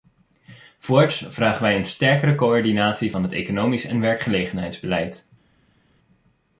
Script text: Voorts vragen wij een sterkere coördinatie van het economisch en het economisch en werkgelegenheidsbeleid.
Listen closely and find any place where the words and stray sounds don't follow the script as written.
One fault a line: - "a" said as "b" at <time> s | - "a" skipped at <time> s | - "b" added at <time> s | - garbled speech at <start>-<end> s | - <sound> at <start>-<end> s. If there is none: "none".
- "het economisch en" skipped at 4.0 s